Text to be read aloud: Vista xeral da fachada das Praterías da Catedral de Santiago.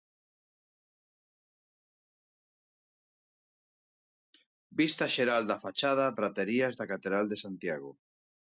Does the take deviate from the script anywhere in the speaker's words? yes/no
yes